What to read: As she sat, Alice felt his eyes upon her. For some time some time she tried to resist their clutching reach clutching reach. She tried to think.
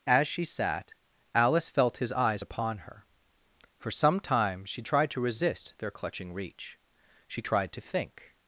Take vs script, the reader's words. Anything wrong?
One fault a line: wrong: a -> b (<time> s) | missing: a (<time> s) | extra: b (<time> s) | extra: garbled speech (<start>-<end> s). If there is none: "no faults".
missing: some time (4.6 s)
missing: clutching reach (6.8 s)